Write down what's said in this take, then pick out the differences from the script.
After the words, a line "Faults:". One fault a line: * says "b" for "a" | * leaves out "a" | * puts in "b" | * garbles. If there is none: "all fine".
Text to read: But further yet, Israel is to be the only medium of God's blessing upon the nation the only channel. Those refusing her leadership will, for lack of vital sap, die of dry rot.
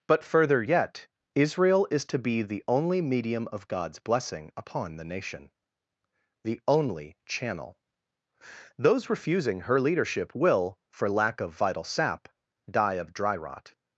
But further yet, Israel is to be the only medium of God's blessing upon the nation the only channel. Those refusing her leadership will, for lack of vital sap, die of dry rot.
Faults:
all fine